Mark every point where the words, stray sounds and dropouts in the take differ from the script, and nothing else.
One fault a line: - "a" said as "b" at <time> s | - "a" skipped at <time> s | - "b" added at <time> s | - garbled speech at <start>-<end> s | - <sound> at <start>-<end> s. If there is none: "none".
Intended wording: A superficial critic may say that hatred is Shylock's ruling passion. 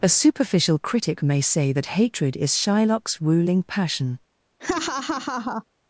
- laugh at 4.6-5.6 s